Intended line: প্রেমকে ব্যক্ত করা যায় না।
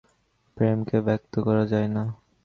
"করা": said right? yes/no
yes